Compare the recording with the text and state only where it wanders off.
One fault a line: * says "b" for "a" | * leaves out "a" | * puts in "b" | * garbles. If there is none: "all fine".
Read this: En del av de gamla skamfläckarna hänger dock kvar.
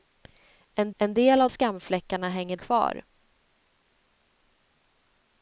* puts in "en"
* leaves out "de gamla"
* leaves out "dock"